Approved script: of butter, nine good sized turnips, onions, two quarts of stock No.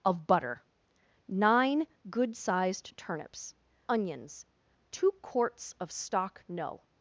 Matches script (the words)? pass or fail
pass